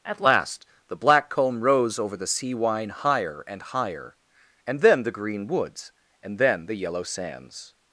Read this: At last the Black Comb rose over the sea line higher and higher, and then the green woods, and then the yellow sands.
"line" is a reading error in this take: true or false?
true